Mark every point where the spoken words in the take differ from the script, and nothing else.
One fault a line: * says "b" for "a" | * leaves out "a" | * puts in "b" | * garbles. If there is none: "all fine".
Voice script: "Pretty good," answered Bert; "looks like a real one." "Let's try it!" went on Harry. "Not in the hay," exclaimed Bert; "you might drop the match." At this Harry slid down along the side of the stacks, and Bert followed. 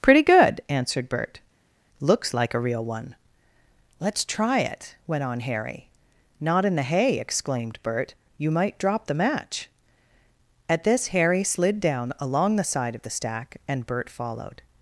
* says "stack" for "stacks"